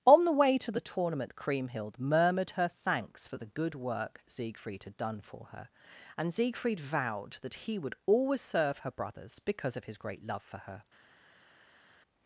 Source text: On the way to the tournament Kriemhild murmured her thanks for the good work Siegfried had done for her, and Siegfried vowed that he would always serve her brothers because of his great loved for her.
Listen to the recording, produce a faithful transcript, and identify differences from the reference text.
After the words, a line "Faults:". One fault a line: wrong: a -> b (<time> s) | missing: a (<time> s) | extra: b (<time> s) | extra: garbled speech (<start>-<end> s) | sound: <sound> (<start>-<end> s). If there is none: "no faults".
On the way to the tournament Kriemhild murmured her thanks for the good work Siegfried had done for her, and Siegfried vowed that he would always serve her brothers because of his great love for her.
Faults:
wrong: loved -> love (10.2 s)